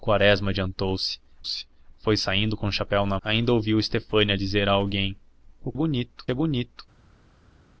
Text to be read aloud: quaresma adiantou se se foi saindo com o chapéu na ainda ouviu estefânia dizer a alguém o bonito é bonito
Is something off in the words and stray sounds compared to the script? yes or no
no